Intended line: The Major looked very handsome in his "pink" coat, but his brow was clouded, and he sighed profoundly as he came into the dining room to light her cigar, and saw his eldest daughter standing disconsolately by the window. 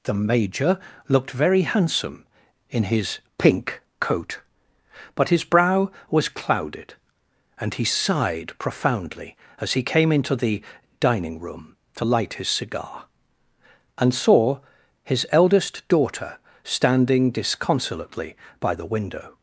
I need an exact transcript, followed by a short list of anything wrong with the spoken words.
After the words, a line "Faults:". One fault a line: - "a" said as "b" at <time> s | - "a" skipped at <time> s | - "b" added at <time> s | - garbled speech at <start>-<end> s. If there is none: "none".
The Major looked very handsome in his "pink" coat, but his brow was clouded, and he sighed profoundly as he came into the dining room to light his cigar, and saw his eldest daughter standing disconsolately by the window.
Faults:
- "her" said as "his" at 12.3 s